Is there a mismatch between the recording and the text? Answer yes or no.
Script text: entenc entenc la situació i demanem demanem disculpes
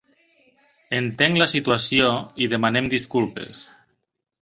yes